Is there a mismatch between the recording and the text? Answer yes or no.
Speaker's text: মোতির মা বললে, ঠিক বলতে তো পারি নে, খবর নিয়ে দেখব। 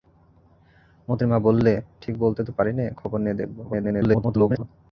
yes